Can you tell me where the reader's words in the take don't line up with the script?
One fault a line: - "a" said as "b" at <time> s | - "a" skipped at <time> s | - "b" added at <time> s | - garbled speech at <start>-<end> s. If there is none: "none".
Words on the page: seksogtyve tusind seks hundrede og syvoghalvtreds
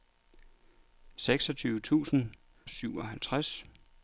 - "seks hundrede og" skipped at 2.3 s